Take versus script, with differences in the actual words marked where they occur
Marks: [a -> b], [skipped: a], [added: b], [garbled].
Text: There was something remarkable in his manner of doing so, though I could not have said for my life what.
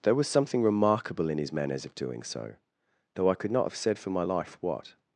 There was something remarkable in his [manner -> manners] of doing so, though I could not have said for my life what.